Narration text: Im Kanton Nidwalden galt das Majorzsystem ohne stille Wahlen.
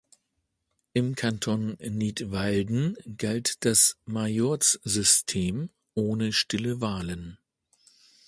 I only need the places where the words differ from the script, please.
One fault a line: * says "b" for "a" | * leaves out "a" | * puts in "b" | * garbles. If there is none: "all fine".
all fine